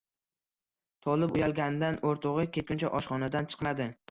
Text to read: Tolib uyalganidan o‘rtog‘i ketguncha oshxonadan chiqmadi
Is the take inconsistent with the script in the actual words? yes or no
no